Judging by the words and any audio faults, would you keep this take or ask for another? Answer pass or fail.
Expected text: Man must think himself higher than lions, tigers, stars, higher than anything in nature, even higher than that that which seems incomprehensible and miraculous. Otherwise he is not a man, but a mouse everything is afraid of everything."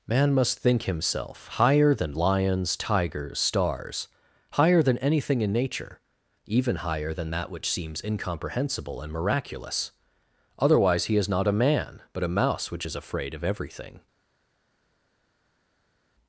fail